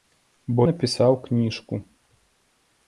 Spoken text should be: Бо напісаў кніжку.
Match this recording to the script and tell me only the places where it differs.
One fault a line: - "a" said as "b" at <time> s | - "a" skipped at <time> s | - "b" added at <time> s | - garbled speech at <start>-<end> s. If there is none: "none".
none